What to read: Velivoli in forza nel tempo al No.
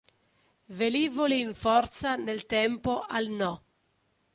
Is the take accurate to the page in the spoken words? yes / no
yes